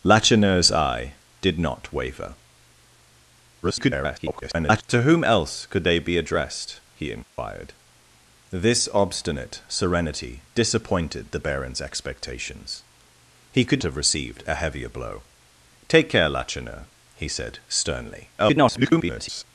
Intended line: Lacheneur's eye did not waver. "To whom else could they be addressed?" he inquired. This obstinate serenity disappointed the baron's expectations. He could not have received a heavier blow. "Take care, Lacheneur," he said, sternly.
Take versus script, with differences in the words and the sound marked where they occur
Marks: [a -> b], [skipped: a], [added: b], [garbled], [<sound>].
Lacheneur's eye did not waver. [garbled] "To whom else could they be addressed?" he inquired. [dropout] This obstinate serenity disappointed the baron's expectations. He could [skipped: not] have received a heavier blow. "Take care, Lacheneur," he said, sternly. [garbled]